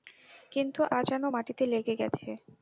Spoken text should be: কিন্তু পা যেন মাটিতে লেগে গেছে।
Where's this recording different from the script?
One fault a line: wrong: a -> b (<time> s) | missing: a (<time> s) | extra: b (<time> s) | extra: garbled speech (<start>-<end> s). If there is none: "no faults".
no faults